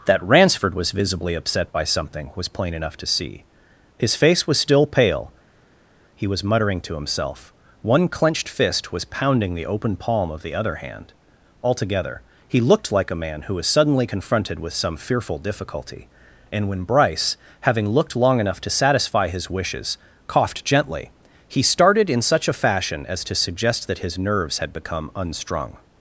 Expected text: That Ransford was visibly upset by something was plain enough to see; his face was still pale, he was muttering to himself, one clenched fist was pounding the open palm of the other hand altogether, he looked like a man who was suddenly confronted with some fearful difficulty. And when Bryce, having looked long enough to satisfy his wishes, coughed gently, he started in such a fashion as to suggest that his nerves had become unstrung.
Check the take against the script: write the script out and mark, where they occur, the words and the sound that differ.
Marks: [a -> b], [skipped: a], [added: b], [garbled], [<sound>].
That Ransford was visibly upset by something was plain enough to see; his face was still pale, he was muttering to himself, one clenched fist was pounding the open palm of the other hand altogether, he looked like a man who was suddenly confronted with some fearful difficulty. And when Bryce, having looked long enough to satisfy his wishes, coughed gently, he started in such a fashion as to suggest that his nerves had become unstrung.